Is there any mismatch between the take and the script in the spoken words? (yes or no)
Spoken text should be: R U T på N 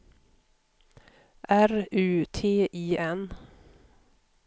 yes